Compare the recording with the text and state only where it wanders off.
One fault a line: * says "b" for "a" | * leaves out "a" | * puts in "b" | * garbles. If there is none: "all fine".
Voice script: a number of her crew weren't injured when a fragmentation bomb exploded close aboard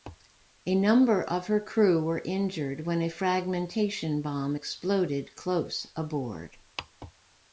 * says "were" for "weren't"